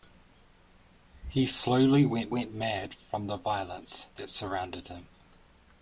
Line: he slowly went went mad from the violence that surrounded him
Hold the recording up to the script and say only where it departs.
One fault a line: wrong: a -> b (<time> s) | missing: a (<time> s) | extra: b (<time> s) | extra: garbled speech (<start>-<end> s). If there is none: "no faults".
no faults